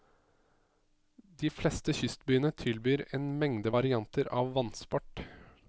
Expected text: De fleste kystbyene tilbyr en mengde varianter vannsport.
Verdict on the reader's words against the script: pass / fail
fail